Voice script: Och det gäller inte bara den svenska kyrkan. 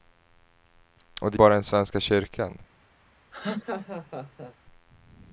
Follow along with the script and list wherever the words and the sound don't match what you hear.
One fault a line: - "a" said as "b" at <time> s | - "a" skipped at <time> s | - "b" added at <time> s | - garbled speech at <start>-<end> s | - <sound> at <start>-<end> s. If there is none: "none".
- "gäller inte" skipped at 1.4 s
- laugh at 3.3-4.5 s